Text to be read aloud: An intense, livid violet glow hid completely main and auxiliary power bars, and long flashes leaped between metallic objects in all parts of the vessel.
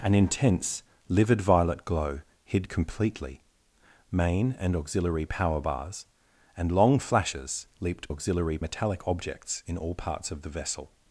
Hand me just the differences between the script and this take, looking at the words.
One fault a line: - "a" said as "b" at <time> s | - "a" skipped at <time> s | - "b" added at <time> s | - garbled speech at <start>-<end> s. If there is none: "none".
- "between" said as "auxiliary" at 8.1 s